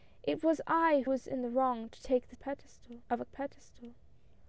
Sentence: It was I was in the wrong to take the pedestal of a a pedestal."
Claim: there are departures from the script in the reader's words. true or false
false